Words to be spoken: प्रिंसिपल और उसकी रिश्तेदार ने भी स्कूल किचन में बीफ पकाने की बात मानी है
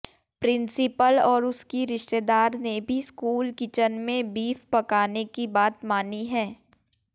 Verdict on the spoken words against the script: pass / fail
pass